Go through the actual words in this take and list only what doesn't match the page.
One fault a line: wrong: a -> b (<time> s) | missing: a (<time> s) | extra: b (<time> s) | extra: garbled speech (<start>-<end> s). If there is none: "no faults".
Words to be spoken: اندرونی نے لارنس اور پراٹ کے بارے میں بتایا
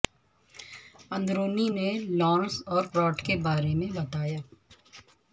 no faults